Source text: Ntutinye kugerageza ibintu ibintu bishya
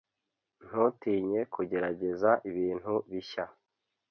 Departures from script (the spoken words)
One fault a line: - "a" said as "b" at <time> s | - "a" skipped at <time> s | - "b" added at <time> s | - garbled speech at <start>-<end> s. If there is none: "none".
- "ibintu" skipped at 2.9 s